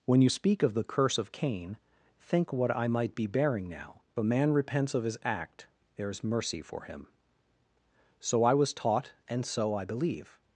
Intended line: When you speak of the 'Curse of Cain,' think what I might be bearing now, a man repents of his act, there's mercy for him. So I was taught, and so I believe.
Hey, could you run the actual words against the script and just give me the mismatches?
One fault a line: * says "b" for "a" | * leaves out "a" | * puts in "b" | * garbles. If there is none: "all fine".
all fine